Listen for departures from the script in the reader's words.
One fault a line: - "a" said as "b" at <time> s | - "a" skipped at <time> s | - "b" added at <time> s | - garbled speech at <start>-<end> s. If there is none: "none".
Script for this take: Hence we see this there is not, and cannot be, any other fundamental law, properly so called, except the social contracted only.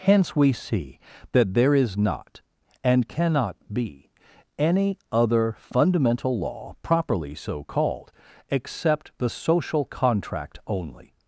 - "this" said as "that" at 1.3 s
- "contracted" said as "contract" at 9.8 s